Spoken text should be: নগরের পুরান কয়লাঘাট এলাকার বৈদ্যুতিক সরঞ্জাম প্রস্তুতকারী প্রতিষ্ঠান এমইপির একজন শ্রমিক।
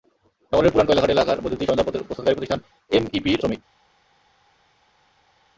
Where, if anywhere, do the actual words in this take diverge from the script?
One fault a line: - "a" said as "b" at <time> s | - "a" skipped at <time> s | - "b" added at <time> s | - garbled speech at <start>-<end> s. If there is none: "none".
- "একজন" skipped at 3.4 s